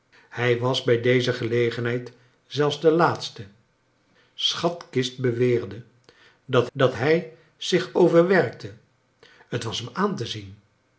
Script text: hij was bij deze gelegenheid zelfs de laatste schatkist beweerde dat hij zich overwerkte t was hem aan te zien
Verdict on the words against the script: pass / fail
fail